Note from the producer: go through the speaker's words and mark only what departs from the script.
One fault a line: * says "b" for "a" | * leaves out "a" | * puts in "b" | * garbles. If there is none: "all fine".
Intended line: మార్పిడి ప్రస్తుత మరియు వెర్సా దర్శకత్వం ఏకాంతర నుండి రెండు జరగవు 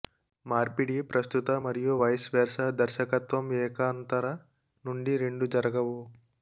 * puts in "వైస్"